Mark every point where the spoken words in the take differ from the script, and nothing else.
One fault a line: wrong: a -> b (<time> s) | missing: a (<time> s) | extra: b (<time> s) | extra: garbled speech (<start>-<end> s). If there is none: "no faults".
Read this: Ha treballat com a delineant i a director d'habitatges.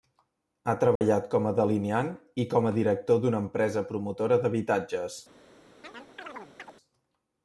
extra: com (2.5 s)
extra: d'una empresa promotora (3.3 s)